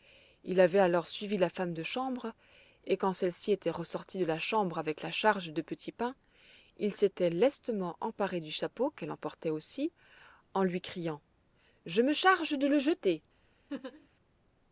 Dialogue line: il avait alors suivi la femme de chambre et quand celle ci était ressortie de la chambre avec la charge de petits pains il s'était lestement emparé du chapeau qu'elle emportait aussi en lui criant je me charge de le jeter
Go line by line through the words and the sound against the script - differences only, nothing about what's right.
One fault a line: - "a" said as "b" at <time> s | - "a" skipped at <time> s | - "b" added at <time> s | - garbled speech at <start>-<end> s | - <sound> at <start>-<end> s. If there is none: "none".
- laugh at 13.7-14.1 s